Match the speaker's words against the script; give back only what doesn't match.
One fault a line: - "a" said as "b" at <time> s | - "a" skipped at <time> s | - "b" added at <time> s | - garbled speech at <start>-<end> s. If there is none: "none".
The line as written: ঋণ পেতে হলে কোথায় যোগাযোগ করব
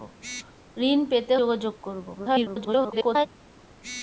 - "হলে কোথায়" skipped at 1.4 s
- garbled speech at 2.1-3.3 s